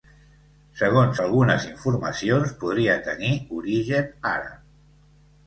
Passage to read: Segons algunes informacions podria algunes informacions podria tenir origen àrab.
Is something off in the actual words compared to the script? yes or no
yes